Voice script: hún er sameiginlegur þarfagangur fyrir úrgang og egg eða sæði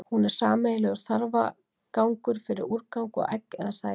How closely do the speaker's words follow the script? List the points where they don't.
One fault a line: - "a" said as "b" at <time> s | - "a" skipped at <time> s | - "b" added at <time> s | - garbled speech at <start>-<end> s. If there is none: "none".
none